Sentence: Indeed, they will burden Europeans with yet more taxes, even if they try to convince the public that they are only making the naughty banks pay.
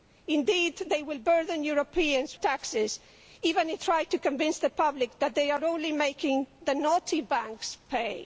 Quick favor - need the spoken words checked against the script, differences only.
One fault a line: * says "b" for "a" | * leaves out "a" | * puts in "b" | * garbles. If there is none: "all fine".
* leaves out "with yet more"
* leaves out "they"